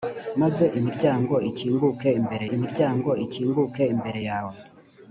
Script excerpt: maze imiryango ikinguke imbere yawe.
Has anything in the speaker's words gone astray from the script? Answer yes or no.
yes